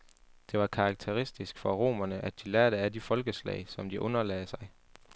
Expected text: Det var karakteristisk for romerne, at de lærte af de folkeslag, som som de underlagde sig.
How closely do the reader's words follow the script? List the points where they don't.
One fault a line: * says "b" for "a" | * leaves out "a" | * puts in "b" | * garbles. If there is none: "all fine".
* leaves out "som"